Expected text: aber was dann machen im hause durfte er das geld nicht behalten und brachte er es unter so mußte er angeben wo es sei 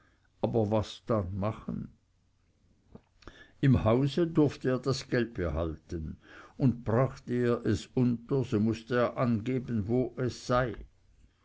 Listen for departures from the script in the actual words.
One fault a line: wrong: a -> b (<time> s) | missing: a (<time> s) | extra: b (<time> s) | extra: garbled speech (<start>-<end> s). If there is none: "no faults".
missing: nicht (5.4 s)